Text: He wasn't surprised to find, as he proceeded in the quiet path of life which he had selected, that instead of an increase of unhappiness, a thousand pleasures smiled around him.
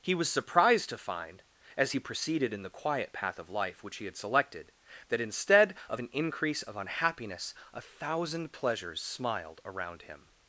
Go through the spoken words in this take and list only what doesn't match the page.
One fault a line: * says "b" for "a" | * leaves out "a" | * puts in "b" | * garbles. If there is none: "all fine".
* says "was" for "wasn't"